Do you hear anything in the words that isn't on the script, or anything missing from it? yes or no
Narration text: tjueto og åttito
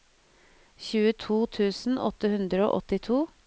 yes